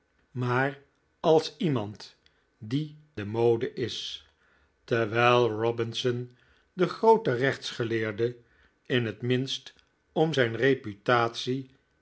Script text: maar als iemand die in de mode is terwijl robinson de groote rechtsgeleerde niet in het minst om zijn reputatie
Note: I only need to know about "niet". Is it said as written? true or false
false